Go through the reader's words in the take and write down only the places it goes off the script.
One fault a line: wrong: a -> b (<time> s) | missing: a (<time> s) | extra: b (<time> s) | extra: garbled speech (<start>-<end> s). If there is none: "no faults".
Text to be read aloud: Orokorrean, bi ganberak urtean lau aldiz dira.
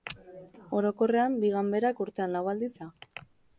no faults